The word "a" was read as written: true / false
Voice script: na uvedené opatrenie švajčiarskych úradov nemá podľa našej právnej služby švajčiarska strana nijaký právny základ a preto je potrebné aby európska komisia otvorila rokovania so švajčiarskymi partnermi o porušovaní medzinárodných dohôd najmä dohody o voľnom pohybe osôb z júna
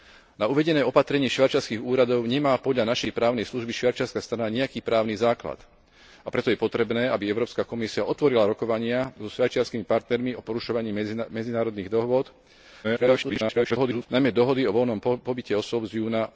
true